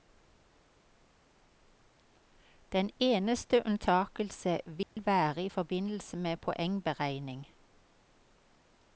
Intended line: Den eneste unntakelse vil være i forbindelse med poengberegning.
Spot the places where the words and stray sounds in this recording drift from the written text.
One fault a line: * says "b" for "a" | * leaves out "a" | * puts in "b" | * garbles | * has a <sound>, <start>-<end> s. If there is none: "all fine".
* has a dropout, 4.8-5.0 s